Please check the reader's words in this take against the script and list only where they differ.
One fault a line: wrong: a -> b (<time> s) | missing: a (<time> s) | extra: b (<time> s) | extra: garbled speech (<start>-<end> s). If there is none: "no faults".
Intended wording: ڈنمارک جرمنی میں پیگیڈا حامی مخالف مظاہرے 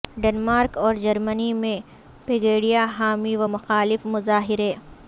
extra: اور (0.8 s)
extra: و (3.4 s)